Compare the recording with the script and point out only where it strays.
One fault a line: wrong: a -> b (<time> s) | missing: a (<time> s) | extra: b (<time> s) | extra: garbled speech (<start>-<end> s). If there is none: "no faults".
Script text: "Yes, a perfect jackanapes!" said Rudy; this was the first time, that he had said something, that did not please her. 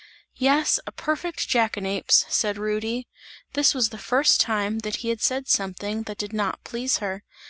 no faults